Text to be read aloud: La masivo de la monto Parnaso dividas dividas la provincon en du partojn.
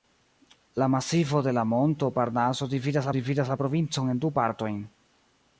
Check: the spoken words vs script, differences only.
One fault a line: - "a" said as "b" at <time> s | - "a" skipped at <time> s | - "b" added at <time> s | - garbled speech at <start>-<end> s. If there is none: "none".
none